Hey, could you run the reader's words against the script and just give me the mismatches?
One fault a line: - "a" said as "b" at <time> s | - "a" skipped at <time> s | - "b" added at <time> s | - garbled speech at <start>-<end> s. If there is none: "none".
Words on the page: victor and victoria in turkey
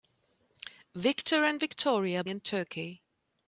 none